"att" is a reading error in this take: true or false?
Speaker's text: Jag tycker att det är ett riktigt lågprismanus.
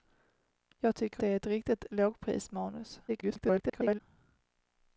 true